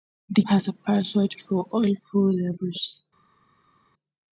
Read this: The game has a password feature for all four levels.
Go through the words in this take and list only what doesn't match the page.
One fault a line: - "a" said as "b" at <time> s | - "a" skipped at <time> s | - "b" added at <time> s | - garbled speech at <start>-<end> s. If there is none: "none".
- "game" skipped at 0.4 s
- "feature" skipped at 1.3 s